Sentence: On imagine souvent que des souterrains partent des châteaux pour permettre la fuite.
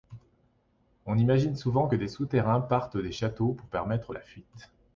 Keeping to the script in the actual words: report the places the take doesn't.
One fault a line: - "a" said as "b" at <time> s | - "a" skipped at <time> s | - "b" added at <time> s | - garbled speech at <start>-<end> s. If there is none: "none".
none